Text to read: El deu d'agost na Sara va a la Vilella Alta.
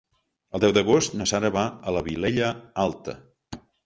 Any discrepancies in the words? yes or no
no